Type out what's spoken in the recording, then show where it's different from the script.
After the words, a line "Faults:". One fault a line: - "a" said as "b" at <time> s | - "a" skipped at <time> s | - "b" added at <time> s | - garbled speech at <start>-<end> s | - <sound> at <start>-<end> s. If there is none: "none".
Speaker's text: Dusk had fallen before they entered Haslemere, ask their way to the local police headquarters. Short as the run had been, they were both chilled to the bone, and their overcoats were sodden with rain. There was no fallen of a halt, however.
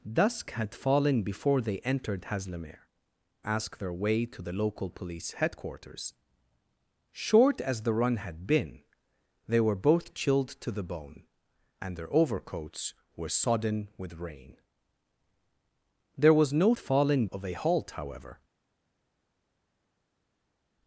Dusk had fallen before they entered Haslemere, ask their way to the local police headquarters. Short as the run had been, they were both chilled to the bone, and their overcoats were sodden with rain. There was no fallen of a halt, however.
Faults:
none